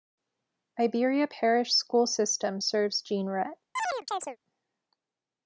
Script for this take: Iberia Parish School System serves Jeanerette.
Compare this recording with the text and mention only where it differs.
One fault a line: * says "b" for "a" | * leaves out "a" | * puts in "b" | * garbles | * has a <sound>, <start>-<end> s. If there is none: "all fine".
* has a chirp, 3.8-4.4 s